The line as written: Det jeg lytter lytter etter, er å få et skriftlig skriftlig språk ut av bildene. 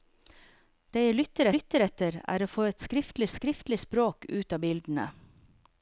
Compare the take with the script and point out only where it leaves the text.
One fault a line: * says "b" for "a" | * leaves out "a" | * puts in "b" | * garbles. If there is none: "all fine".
all fine